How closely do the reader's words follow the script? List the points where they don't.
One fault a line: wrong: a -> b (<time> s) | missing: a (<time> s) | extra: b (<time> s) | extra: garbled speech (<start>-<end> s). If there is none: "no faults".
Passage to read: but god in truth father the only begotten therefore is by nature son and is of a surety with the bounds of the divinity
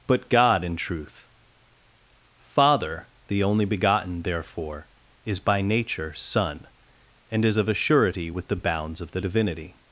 no faults